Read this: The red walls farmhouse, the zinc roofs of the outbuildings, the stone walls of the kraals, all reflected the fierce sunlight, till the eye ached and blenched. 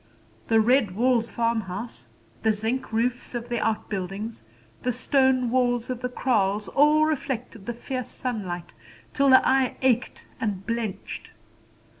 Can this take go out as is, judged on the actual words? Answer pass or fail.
pass